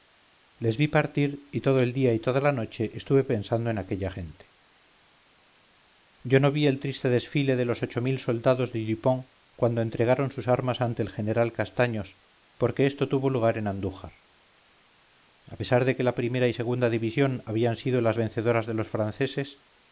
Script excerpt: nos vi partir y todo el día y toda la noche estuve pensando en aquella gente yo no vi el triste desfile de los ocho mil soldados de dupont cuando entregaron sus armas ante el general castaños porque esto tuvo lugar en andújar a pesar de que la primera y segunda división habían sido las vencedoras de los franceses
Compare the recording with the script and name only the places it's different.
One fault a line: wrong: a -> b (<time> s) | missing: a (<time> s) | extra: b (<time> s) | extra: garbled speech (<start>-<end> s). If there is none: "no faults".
wrong: nos -> les (0.6 s)